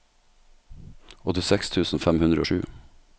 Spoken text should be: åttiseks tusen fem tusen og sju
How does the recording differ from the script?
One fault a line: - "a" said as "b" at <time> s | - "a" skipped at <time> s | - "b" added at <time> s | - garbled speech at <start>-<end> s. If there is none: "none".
- "tusen" said as "hundre" at 2.2 s